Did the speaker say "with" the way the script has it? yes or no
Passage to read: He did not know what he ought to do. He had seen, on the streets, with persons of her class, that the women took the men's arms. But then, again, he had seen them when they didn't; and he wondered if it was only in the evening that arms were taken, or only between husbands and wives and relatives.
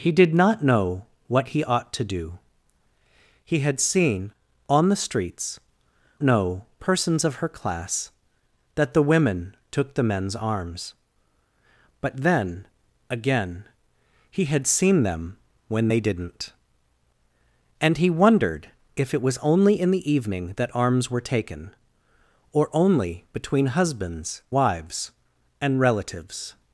no